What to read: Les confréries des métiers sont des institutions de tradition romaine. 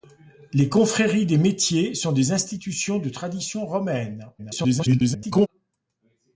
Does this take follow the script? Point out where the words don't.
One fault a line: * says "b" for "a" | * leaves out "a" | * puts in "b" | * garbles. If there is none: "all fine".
* garbles